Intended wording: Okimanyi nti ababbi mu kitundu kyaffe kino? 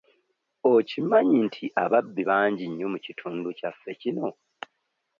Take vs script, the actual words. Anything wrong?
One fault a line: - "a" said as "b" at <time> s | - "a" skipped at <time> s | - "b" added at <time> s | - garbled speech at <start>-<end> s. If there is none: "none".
- "bangi nnyo" added at 2.3 s